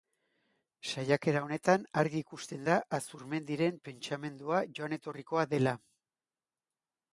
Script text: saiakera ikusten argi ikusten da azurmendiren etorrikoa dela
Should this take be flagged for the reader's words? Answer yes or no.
yes